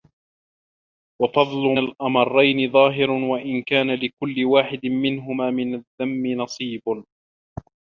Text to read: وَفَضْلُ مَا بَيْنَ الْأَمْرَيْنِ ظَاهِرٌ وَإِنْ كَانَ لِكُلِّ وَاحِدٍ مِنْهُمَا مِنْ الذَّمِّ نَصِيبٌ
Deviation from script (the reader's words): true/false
true